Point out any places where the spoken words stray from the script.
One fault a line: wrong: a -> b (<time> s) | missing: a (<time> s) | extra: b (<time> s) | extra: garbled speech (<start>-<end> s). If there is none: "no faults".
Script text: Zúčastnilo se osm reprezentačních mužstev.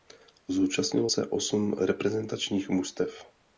no faults